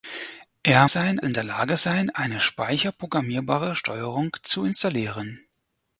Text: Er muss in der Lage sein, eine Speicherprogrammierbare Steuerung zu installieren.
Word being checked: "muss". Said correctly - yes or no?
no